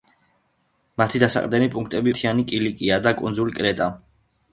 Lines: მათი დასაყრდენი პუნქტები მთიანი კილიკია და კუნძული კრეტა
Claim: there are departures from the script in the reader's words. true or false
false